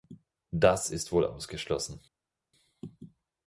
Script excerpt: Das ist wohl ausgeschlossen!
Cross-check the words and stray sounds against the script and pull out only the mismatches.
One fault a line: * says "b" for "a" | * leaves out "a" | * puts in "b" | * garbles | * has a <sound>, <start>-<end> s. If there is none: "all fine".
all fine